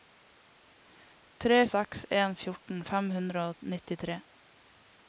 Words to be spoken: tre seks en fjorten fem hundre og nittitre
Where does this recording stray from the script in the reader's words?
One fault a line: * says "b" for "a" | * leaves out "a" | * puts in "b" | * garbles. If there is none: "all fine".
all fine